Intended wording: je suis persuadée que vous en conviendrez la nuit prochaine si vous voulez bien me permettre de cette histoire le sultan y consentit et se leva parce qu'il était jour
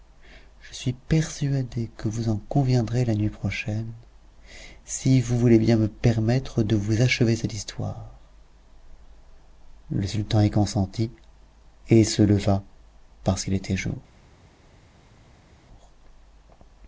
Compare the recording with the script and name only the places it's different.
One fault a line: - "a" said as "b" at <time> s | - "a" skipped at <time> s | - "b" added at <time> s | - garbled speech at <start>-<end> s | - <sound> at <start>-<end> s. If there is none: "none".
- "vous achever" added at 6.8 s